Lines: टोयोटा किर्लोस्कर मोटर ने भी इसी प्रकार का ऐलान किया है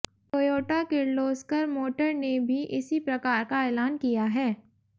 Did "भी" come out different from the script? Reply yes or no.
no